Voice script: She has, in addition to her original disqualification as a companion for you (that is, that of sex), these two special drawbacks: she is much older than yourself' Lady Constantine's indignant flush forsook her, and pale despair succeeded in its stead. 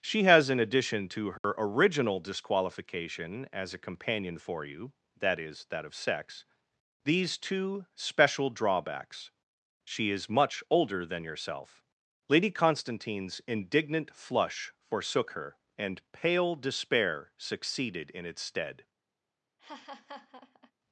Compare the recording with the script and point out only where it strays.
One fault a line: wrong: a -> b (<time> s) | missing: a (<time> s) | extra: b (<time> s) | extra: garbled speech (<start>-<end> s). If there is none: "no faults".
no faults